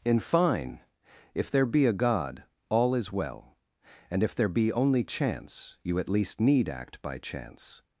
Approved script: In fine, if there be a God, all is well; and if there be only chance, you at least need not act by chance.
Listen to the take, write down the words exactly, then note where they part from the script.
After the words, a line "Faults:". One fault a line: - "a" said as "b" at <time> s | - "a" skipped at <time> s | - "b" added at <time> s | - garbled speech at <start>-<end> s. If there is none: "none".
In fine, if there be a God, all is well; and if there be only chance, you at least need act by chance.
Faults:
- "not" skipped at 6.7 s